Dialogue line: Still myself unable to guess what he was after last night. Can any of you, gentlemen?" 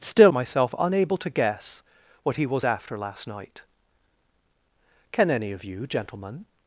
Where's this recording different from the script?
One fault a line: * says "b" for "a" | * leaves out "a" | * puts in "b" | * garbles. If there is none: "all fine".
all fine